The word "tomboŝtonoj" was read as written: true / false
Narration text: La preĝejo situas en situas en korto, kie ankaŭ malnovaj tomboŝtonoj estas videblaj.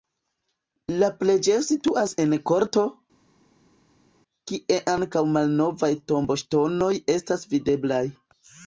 true